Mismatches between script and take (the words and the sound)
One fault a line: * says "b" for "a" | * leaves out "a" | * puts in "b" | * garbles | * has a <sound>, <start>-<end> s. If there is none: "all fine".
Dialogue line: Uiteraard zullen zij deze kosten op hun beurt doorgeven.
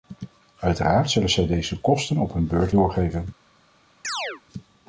* has a chirp, 4.0-4.4 s